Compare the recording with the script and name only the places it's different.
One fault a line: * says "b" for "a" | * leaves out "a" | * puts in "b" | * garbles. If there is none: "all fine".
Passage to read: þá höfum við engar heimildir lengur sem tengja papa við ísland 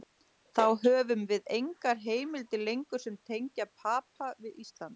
all fine